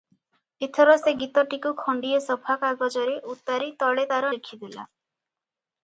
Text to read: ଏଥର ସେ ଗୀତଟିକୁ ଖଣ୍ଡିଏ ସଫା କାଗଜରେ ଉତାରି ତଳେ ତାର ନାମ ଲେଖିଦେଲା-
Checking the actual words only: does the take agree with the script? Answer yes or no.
no